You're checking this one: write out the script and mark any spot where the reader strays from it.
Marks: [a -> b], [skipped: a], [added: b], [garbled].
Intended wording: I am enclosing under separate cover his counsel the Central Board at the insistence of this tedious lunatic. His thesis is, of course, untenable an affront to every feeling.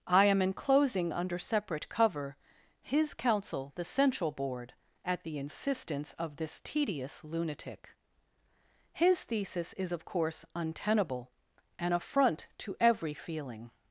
I am enclosing under separate cover his counsel the Central Board at the insistence of this tedious lunatic. His thesis is, of course, untenable an affront to every feeling.